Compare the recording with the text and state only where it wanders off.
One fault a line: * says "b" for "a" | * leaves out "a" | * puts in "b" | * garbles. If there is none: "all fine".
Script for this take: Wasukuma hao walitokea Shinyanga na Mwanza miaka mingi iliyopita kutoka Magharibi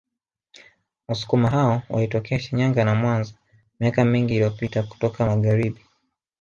all fine